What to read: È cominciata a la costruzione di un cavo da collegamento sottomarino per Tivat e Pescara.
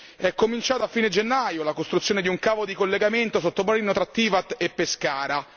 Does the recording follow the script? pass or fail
fail